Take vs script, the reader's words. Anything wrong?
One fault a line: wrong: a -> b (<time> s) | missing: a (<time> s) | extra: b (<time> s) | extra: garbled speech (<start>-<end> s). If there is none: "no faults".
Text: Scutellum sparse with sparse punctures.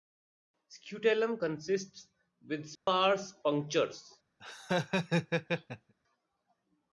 wrong: sparse -> consists (1.4 s)